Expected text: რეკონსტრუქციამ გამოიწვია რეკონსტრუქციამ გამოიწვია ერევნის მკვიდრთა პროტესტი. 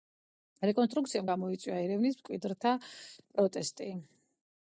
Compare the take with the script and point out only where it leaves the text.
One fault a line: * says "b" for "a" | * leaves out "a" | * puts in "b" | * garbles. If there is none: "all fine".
* leaves out "რეკონსტრუქციამ გამოიწვია"